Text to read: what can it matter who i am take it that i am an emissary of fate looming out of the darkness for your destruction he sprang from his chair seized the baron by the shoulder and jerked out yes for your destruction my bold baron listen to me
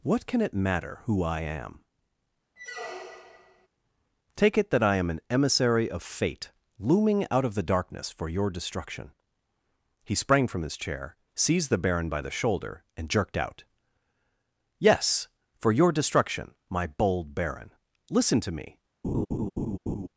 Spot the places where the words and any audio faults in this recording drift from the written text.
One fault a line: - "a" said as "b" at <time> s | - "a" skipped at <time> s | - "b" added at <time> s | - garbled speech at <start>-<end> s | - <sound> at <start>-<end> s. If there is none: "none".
- squeak at 2.6-3.7 s
- laugh at 19.0-20.1 s